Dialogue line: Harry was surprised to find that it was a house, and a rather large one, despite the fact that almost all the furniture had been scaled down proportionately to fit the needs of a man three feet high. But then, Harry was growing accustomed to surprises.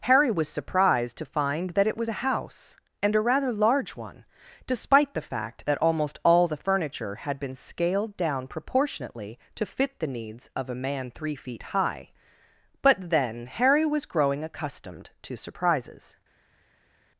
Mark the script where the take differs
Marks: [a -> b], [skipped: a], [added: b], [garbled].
Harry was surprised to find that it was a house, and a rather large one, despite the fact that almost all the furniture had been scaled down proportionately to fit the needs of a man three feet high. But then, Harry was growing accustomed to surprises.